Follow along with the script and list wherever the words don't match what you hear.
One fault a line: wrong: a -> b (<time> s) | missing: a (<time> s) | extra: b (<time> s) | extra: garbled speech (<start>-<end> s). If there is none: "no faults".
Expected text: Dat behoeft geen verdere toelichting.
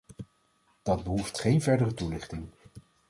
no faults